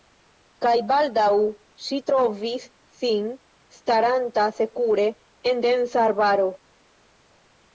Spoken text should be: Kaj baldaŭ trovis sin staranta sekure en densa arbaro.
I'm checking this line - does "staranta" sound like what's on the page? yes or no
yes